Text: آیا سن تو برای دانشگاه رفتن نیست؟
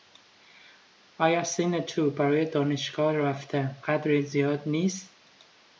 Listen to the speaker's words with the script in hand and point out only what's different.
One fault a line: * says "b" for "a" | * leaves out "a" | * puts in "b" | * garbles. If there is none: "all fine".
* puts in "قدری زیاد"